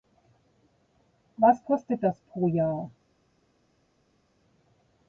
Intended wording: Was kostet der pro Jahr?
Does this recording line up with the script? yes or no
no